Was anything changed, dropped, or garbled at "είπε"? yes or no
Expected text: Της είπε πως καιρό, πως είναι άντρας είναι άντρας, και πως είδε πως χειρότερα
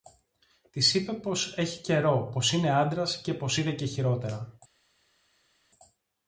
no